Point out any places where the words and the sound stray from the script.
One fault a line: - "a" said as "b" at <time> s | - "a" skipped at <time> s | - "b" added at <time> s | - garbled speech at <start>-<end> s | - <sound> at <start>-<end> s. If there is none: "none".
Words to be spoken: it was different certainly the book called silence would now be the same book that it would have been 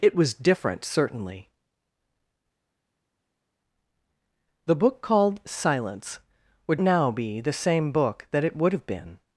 none